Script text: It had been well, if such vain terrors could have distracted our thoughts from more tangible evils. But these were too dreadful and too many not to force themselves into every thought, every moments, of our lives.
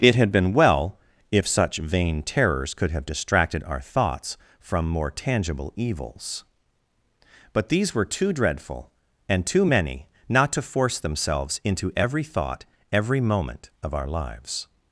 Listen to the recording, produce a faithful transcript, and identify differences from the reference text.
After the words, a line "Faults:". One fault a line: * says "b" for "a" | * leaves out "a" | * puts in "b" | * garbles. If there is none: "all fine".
It had been well, if such vain terrors could have distracted our thoughts from more tangible evils. But these were too dreadful and too many not to force themselves into every thought, every moment, of our lives.
Faults:
* says "moment" for "moments"